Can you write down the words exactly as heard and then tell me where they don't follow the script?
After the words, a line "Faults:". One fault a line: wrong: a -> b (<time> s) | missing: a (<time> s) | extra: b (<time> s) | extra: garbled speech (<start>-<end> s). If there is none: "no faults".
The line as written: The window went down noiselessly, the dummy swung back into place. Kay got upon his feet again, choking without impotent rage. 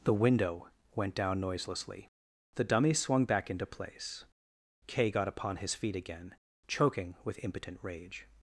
The window went down noiselessly, the dummy swung back into place. Kay got upon his feet again, choking with impotent rage.
Faults:
wrong: without -> with (7.2 s)